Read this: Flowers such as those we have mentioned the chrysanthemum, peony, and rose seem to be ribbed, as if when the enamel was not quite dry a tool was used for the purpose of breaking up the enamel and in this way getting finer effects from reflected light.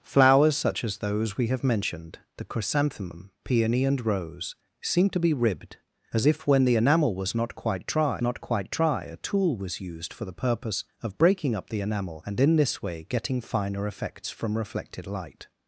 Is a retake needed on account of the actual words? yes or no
yes